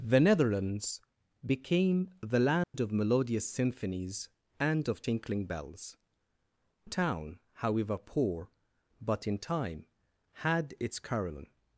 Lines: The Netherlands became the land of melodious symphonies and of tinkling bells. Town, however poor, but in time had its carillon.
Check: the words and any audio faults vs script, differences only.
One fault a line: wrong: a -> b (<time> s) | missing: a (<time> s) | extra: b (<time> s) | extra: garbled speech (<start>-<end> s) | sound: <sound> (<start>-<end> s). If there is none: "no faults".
sound: dropout (2.6-2.7 s)